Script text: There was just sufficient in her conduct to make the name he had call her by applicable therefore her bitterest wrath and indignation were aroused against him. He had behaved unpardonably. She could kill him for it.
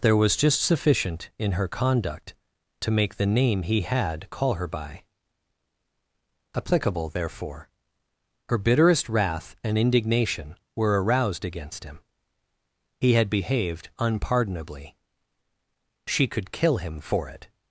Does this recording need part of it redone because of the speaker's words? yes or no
no